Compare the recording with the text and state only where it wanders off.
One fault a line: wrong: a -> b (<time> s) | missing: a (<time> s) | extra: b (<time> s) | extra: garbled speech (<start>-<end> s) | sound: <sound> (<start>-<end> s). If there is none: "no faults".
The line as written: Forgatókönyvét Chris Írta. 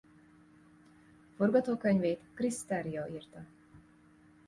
extra: Terrio (2.6 s)